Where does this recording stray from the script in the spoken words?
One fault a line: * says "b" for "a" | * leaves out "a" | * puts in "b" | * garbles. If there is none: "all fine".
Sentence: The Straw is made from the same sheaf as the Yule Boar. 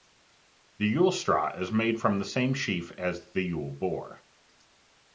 * puts in "Yule"